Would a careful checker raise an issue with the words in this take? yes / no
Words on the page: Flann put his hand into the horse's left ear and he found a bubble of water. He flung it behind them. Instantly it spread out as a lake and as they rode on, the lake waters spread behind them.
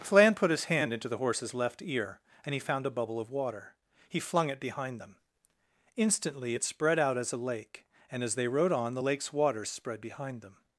yes